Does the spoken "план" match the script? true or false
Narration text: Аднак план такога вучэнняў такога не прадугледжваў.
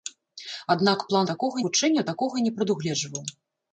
true